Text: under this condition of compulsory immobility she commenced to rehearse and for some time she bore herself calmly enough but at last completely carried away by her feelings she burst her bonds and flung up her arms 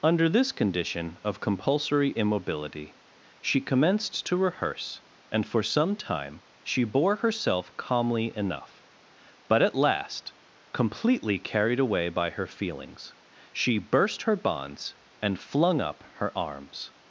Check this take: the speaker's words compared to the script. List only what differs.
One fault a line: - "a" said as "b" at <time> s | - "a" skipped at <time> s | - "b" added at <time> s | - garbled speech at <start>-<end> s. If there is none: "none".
none